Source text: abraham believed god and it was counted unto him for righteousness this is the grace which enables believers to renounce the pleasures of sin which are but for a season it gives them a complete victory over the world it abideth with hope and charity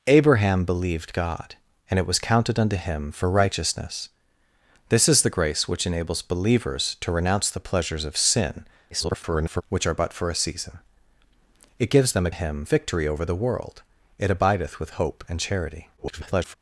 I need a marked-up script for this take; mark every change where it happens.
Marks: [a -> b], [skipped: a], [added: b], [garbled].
abraham believed god and it was counted unto him for righteousness this is the grace which enables believers to renounce the pleasures of sin [garbled] which are but for a season it gives them a [complete -> him] victory over the world it abideth with hope and charity [garbled]